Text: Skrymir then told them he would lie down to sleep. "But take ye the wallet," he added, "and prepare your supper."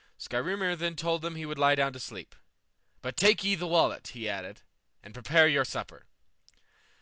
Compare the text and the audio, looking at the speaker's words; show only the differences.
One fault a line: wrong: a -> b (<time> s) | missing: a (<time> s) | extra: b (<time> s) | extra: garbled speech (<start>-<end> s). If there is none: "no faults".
no faults